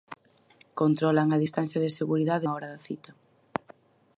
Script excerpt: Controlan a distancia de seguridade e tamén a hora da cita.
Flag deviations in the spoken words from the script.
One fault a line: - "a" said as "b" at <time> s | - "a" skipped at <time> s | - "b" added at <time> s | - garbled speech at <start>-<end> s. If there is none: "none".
- "e tamén" skipped at 2.5 s